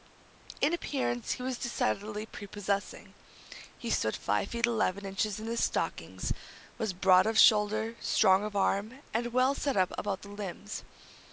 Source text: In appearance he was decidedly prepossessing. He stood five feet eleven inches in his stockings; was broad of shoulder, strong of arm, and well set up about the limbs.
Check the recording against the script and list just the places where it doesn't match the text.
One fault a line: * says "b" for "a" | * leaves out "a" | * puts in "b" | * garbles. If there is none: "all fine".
all fine